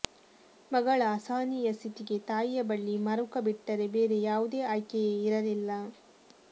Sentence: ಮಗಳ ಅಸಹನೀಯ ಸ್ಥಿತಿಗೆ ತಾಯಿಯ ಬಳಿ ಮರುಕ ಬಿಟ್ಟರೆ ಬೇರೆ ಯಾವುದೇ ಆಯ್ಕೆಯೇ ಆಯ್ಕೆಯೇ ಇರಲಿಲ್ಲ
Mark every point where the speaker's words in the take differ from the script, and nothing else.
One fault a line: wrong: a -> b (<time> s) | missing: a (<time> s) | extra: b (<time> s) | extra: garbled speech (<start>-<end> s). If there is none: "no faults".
missing: ಆಯ್ಕೆಯೇ (5.1 s)